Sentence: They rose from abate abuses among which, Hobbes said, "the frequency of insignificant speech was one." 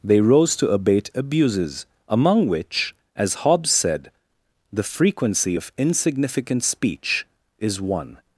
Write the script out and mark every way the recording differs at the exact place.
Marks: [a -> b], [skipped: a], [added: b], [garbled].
They rose [from -> to] abate abuses among which, [added: as] Hobbes said, "the frequency of insignificant speech [was -> is] one."